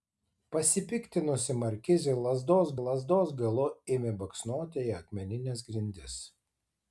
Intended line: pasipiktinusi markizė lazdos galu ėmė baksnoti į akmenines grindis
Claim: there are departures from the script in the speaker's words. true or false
true